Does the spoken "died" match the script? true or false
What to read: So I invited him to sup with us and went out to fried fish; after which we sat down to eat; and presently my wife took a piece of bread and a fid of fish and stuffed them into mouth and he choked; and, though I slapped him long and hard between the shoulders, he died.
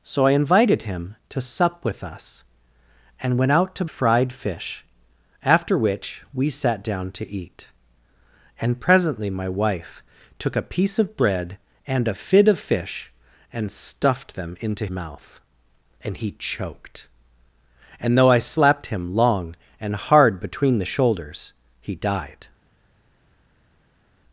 true